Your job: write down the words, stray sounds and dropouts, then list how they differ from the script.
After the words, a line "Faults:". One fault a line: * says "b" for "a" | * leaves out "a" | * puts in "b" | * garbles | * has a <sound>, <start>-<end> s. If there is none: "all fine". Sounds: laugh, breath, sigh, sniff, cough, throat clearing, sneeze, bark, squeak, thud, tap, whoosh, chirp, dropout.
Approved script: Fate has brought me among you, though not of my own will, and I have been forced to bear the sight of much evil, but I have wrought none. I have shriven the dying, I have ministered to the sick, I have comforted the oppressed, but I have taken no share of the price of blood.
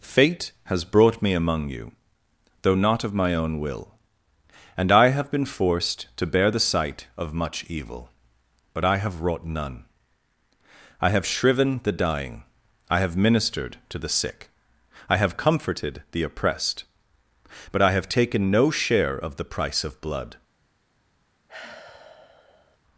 Fate has brought me among you, though not of my own will, and I have been forced to bear the sight of much evil, but I have wrought none. I have shriven the dying, I have ministered to the sick, I have comforted the oppressed, but I have taken no share of the price of blood.
Faults:
* has a sigh, 21.5-22.8 s